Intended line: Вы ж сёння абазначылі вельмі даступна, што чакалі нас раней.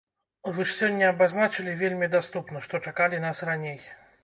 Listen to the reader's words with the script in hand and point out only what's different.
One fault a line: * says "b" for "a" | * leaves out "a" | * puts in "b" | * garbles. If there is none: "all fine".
all fine